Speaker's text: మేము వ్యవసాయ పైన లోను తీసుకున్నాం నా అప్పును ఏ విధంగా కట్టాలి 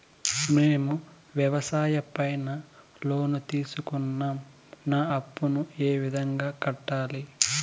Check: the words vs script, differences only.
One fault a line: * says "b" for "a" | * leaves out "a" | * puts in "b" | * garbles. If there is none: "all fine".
all fine